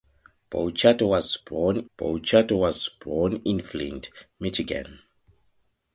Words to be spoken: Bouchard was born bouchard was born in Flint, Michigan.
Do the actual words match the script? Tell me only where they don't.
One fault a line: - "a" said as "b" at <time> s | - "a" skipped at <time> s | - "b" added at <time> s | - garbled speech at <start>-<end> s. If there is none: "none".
none